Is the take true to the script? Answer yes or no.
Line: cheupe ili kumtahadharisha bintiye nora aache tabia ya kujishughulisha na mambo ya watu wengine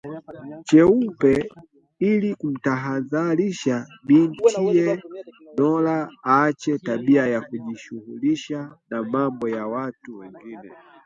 yes